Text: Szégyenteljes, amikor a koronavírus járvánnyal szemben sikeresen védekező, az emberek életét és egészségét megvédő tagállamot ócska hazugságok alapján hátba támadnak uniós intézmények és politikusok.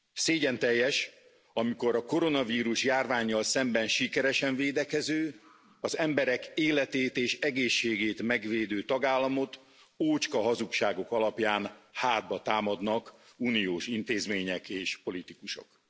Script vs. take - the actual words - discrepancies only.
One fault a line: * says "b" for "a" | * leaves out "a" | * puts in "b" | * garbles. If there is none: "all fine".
all fine